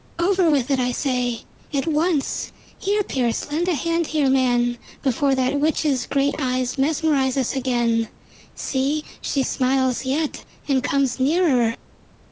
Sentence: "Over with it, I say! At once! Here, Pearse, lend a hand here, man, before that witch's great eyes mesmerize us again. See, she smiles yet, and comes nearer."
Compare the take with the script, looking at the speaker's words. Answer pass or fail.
pass